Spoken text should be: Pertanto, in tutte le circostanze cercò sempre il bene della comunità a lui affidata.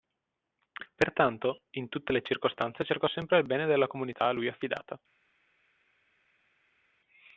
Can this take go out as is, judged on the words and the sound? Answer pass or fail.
pass